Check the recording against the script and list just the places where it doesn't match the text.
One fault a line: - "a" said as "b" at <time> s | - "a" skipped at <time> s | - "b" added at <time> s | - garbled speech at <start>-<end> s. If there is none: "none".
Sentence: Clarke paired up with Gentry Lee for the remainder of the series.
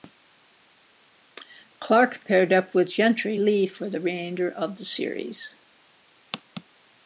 none